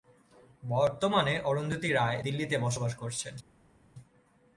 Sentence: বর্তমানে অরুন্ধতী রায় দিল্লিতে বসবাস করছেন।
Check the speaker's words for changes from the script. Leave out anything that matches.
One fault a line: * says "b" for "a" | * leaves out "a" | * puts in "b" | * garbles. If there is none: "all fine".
all fine